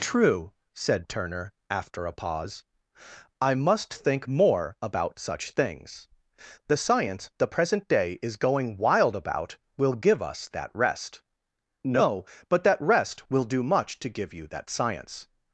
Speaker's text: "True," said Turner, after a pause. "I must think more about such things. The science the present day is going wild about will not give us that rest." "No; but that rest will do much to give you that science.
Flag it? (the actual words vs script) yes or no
yes